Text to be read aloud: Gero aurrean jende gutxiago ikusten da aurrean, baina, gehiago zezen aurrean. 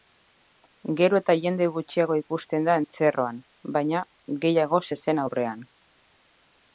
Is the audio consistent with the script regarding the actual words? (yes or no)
no